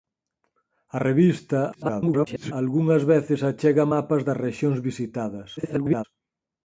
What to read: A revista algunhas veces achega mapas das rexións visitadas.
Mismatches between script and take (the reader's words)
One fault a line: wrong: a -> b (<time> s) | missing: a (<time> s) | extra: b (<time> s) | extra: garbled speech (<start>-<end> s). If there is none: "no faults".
extra: garbled speech (1.7-2.5 s)
extra: garbled speech (5.6-6.0 s)